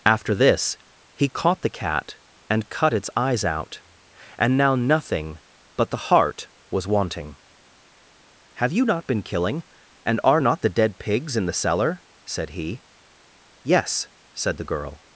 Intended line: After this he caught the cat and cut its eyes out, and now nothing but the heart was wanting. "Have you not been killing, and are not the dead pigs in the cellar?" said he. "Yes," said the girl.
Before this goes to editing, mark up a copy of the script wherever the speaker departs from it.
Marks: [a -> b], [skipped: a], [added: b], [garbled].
After this he caught the cat and cut its eyes out, and now nothing but the heart was wanting. "Have you not been killing, and are not the dead pigs in the cellar?" said he. "Yes," said the girl.